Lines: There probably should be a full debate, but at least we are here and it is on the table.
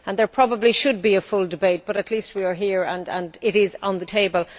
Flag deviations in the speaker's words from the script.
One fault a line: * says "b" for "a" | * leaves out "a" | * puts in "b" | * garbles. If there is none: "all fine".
all fine